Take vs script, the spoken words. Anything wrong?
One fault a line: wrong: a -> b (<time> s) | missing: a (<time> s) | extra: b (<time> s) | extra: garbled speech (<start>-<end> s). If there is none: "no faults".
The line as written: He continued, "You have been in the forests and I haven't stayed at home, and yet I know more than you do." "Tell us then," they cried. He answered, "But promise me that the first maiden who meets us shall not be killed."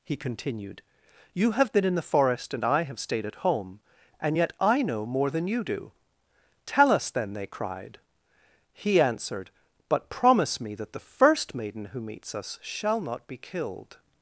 wrong: forests -> forest (2.0 s)
wrong: haven't -> have (2.8 s)